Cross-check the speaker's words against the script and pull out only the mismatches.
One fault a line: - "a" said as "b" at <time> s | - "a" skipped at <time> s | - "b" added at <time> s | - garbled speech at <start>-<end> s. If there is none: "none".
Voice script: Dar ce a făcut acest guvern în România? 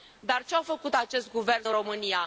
none